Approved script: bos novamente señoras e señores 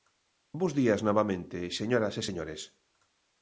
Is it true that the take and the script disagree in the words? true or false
true